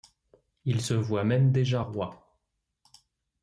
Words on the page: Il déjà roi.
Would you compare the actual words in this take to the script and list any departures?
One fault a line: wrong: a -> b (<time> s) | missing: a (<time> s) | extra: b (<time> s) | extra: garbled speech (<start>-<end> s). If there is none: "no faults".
extra: se voit même (0.8 s)